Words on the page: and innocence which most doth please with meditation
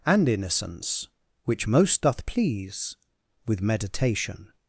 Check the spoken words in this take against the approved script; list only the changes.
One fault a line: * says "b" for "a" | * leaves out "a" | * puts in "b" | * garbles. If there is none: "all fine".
all fine